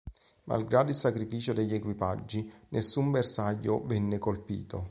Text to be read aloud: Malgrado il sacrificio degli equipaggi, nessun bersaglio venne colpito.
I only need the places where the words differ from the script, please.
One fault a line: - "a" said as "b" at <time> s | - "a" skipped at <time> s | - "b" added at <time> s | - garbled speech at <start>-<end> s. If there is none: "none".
none